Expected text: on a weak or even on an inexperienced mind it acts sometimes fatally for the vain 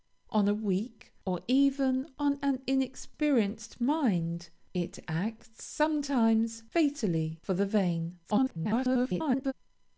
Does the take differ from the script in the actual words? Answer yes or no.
yes